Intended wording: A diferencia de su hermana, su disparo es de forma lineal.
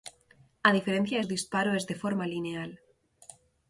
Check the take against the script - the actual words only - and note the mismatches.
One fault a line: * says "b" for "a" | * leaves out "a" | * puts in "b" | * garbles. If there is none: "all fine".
* leaves out "su hermana su"